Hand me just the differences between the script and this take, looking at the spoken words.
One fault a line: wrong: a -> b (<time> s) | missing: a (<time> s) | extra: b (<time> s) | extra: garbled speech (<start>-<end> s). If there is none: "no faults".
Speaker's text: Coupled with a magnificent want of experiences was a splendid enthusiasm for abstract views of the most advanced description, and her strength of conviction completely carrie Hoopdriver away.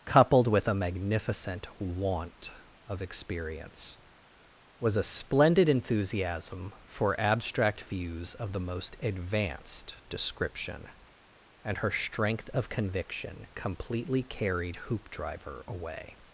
wrong: experiences -> experience (3.0 s)
wrong: carrie -> carried (14.2 s)